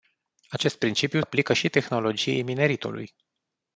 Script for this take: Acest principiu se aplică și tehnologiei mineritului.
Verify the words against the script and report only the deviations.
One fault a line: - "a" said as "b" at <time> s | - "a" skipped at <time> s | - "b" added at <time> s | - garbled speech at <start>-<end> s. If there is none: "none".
- "se" skipped at 1.2 s